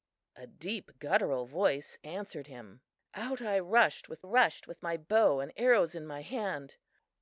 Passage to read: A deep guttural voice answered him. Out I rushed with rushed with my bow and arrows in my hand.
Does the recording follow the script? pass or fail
pass